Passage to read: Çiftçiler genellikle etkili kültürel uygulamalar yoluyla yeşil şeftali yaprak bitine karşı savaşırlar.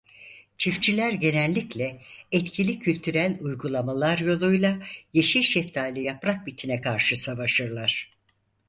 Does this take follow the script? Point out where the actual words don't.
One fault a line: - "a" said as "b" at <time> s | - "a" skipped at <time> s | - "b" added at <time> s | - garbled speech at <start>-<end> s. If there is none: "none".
none